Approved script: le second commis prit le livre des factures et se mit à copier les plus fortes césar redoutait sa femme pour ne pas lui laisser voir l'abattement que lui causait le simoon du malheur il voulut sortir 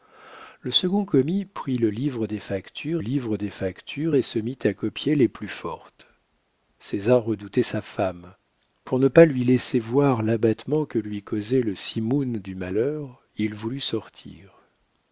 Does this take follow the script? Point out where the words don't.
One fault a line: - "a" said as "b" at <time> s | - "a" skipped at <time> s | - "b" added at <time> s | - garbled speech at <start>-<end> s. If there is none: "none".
- "livre des factures" added at 3.0 s